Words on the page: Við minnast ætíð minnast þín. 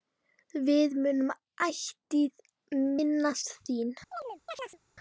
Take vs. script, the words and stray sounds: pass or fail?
fail